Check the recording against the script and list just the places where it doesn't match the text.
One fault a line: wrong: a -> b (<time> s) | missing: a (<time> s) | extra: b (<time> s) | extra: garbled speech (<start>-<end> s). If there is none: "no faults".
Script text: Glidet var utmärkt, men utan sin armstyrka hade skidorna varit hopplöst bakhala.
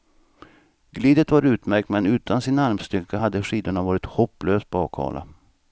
no faults